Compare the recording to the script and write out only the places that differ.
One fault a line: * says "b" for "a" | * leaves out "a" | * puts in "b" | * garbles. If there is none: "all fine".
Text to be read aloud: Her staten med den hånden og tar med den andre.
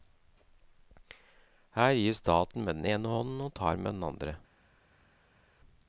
* puts in "gir"
* puts in "ene"